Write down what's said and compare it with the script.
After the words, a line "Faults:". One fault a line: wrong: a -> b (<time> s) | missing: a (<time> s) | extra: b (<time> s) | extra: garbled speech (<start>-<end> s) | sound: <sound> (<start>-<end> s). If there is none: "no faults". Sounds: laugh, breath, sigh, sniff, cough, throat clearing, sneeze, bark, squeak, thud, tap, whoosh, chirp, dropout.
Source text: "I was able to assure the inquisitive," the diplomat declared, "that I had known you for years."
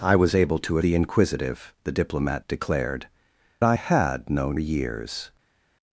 "I was able to the inquisitive," the diplomat declared, "I had known years."
Faults:
missing: assure (0.8 s)
missing: that (3.1 s)
missing: you for (4.6 s)